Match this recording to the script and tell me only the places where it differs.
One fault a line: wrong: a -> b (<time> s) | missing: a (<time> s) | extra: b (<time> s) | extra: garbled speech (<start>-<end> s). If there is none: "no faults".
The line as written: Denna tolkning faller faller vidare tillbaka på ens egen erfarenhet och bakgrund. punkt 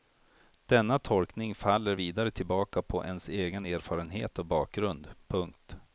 missing: faller (1.9 s)